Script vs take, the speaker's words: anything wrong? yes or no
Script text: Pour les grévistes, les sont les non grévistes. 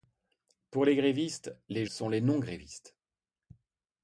no